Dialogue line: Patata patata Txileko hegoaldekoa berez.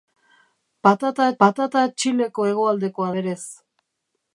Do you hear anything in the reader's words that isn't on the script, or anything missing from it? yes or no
no